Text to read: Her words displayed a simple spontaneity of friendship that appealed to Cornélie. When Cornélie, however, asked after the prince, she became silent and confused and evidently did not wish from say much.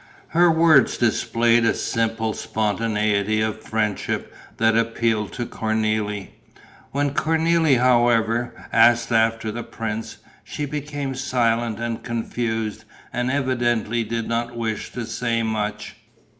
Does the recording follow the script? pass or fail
fail